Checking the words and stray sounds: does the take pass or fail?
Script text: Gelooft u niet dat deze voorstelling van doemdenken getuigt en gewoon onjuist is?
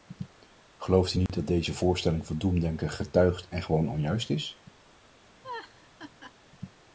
fail